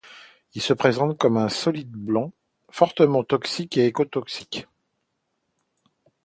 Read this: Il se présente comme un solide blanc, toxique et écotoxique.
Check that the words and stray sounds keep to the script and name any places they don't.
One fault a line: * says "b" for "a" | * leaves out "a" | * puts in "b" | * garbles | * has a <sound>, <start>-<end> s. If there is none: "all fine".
* puts in "fortement"